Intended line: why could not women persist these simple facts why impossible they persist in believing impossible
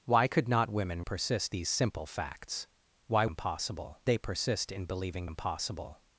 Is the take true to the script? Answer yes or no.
yes